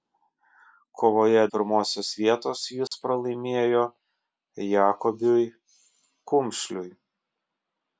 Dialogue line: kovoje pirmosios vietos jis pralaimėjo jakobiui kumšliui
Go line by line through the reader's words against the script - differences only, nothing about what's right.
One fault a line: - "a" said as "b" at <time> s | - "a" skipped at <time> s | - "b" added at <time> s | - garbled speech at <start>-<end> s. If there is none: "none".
none